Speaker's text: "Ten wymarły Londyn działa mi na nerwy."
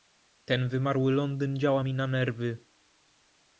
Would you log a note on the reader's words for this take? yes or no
no